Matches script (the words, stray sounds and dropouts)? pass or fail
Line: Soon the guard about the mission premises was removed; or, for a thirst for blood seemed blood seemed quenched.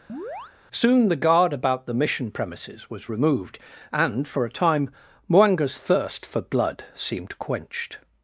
fail